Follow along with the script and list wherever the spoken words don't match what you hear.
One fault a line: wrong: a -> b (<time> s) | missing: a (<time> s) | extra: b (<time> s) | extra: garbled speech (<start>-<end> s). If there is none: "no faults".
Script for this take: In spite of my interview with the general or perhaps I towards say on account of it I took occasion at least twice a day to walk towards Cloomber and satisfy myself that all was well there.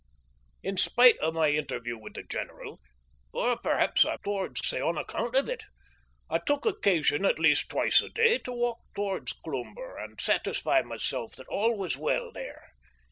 no faults